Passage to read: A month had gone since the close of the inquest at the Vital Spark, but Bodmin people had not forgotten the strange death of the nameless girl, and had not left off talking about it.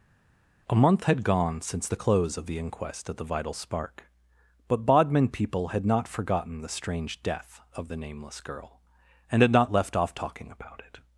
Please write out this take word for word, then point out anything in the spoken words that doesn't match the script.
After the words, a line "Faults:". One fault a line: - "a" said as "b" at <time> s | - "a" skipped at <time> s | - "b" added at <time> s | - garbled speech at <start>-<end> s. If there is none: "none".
A month had gone since the close of the inquest at the Vital Spark, but Bodmin people had not forgotten the strange death of the nameless girl, and had not left off talking about it.
Faults:
none